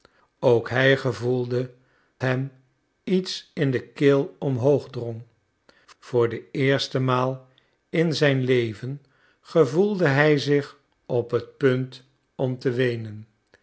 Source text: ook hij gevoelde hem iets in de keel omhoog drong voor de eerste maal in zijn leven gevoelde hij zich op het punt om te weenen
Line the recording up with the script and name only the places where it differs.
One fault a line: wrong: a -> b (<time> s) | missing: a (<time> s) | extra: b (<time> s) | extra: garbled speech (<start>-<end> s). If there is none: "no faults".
no faults